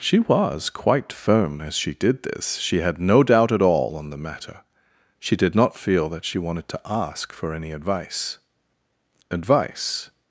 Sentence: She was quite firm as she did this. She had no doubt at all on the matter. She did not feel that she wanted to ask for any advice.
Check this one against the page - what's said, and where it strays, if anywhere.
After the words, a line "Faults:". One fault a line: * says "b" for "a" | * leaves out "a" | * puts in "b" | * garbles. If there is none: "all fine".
She was quite firm as she did this. She had no doubt at all on the matter. She did not feel that she wanted to ask for any advice advice.
Faults:
* puts in "advice"